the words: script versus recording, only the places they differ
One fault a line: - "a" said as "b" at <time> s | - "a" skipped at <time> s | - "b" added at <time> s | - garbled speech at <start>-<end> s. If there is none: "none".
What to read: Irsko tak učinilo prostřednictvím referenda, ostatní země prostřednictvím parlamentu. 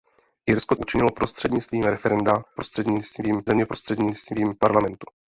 - "tak" skipped at 0.8 s
- "ostatní" said as "prostřednictvím" at 2.5 s